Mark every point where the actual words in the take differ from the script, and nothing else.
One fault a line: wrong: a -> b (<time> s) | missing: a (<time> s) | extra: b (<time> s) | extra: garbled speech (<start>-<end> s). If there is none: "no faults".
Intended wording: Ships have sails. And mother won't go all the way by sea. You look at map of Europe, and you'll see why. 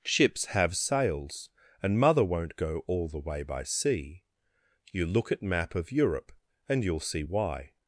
no faults